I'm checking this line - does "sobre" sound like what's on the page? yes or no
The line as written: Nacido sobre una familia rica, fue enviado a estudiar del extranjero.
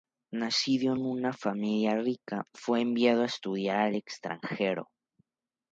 no